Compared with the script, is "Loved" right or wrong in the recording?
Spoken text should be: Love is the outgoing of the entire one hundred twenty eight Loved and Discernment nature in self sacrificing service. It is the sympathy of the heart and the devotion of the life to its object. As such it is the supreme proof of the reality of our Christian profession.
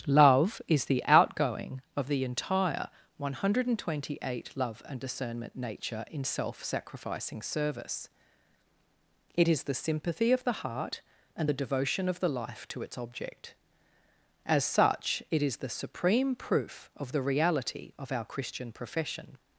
wrong